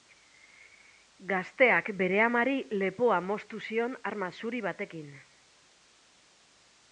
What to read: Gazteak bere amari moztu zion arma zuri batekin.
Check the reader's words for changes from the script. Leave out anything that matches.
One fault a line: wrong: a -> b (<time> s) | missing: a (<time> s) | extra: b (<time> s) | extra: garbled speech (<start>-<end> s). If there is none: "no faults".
extra: lepoa (2.8 s)